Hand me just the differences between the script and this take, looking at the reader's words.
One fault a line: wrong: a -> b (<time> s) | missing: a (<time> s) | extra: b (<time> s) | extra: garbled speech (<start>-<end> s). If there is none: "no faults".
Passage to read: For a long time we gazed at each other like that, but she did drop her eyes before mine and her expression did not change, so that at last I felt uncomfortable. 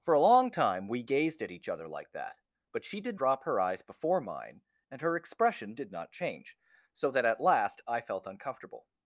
no faults